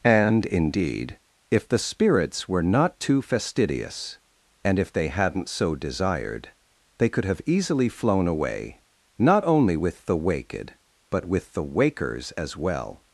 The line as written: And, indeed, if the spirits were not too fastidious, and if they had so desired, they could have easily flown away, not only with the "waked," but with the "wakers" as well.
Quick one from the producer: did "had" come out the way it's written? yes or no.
no